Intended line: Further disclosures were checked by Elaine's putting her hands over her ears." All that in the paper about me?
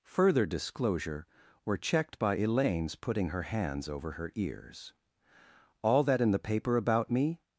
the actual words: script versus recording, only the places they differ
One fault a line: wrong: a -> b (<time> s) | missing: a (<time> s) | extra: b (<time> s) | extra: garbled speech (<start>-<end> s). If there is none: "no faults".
wrong: disclosures -> disclosure (0.5 s)